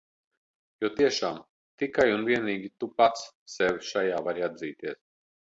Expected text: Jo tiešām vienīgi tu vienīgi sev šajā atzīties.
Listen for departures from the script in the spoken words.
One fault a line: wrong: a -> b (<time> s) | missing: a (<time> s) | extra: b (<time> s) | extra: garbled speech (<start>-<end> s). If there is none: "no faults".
extra: tikai un (1.8 s)
wrong: vienīgi -> pats (3.0 s)
extra: vari (4.3 s)